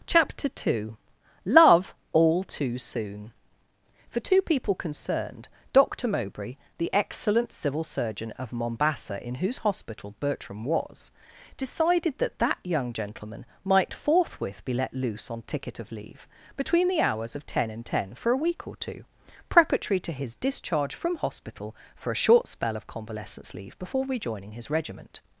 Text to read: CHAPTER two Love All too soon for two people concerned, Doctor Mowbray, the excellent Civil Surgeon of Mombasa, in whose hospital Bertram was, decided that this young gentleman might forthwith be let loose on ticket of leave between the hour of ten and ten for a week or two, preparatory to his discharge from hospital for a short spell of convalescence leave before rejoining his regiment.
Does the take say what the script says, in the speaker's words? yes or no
no